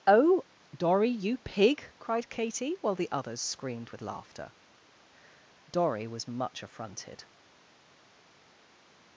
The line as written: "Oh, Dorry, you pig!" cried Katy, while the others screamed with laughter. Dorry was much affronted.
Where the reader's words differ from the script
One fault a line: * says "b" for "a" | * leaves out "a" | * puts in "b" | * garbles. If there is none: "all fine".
all fine